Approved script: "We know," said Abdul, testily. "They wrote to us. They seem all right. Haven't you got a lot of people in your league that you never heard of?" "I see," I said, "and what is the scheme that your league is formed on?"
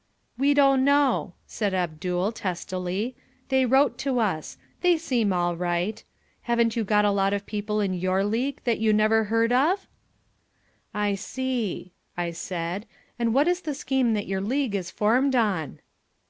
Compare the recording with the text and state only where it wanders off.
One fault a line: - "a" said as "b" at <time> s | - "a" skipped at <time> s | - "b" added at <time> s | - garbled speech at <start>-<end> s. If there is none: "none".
- "don't" added at 0.6 s